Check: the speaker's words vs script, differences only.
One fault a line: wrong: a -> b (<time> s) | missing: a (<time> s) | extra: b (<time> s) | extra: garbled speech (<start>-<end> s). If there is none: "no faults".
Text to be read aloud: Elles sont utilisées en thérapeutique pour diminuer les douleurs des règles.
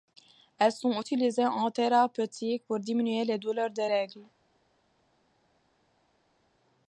no faults